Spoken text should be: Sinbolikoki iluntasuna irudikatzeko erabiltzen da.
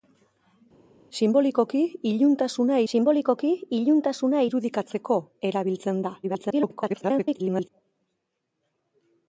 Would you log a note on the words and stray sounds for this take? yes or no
yes